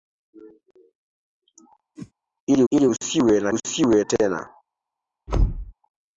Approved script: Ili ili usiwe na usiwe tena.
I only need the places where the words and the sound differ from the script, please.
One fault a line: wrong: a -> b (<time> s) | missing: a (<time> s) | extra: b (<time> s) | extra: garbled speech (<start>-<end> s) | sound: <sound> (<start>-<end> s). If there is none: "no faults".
sound: whoosh (2.0-2.1 s)
sound: thud (5.3-5.7 s)